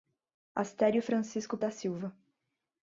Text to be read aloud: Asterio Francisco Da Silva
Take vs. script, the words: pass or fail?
pass